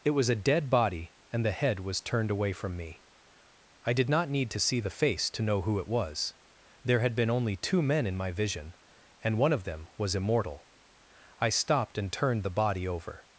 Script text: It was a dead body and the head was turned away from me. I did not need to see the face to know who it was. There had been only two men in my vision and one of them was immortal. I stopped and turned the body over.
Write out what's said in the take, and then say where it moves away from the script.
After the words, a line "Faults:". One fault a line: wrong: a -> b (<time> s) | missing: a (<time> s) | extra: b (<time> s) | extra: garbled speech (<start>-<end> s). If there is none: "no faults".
It was a dead body and the head was turned away from me. I did not need to see the face to know who it was. There had been only two men in my vision and one of them was immortal. I stopped and turned the body over.
Faults:
no faults